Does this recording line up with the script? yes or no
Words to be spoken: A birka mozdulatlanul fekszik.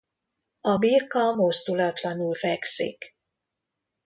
yes